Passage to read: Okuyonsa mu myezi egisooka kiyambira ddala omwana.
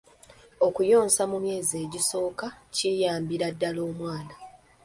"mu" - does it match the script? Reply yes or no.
yes